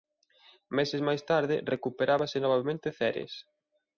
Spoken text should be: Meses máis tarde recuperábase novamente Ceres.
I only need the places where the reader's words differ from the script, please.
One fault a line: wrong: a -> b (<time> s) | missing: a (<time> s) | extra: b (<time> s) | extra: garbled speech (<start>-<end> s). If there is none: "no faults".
no faults